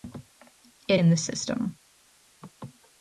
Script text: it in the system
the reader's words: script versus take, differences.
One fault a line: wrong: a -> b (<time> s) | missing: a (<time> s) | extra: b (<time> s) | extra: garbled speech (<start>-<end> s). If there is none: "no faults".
no faults